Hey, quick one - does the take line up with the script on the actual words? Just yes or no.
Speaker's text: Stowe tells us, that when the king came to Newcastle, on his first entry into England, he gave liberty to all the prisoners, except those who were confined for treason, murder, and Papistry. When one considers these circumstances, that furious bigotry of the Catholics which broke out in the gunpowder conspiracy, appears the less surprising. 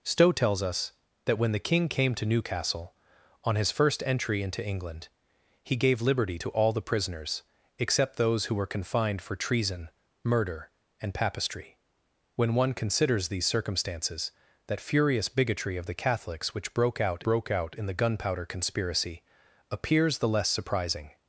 no